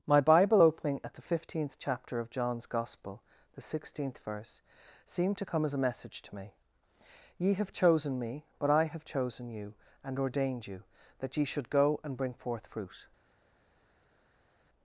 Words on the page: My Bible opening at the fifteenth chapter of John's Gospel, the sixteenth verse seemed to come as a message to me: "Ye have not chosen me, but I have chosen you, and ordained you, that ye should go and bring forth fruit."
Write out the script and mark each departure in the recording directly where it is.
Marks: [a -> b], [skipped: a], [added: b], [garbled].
My Bible opening at the fifteenth chapter of John's Gospel, the sixteenth verse seemed to come as a message to me: "Ye have [skipped: not] chosen me, but I have chosen you, and ordained you, that ye should go and bring forth fruit."